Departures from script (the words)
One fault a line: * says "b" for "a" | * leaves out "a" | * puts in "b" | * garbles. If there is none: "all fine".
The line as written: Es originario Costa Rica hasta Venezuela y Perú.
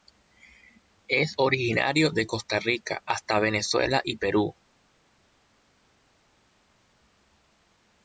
* puts in "de"